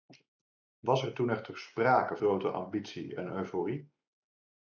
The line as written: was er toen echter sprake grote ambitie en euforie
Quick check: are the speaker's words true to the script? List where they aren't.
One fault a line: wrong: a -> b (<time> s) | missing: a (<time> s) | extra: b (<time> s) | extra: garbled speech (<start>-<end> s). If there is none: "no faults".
no faults